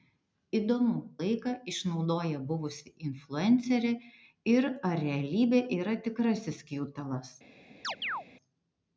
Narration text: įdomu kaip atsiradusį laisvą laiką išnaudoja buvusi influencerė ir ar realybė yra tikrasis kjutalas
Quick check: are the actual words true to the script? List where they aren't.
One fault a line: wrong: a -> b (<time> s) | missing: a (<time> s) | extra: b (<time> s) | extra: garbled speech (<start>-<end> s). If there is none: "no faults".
missing: kaip atsiradusį laisvą (0.9 s)